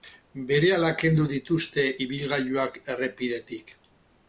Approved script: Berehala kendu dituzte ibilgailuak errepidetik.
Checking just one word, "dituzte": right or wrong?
right